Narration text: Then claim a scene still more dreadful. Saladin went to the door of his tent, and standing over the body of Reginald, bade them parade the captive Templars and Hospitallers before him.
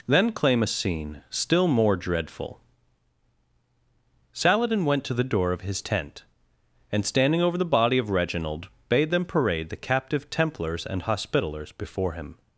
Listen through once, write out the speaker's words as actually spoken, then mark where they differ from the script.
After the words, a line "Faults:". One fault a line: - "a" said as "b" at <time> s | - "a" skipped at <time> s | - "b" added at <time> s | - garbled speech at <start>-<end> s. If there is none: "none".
Then claim a scene still more dreadful. Saladin went to the door of his tent, and standing over the body of Reginald, bade them parade the captive Templars and Hospitallers before him.
Faults:
none